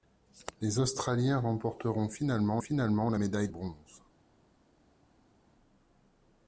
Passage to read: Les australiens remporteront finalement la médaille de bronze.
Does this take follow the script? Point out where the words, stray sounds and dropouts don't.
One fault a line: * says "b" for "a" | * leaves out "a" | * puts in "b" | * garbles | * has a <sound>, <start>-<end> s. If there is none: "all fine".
* puts in "finalement"
* leaves out "de"